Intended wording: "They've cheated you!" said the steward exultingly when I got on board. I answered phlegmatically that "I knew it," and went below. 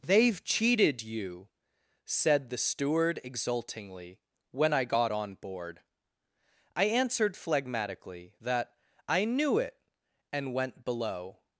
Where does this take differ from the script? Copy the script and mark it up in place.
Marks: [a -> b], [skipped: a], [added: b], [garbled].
"They've cheated you!" said the steward exultingly when I got on board. I answered phlegmatically that "I knew it," and went below.